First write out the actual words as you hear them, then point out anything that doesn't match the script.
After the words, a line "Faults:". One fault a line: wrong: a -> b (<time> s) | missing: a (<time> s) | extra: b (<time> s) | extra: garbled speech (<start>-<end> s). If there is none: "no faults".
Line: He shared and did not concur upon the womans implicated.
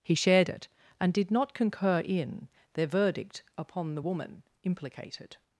He shared it, and did not concur in, their verdict upon the woman implicated.
Faults:
extra: it (0.5 s)
extra: in their verdict (2.0 s)
wrong: womans -> woman (4.0 s)